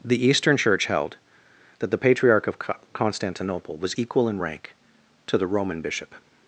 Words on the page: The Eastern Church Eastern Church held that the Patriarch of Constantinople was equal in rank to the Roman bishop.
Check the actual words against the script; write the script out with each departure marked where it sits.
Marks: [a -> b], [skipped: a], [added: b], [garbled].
The Eastern Church [skipped: Eastern Church] held that the Patriarch of Constantinople was equal in rank to the Roman bishop.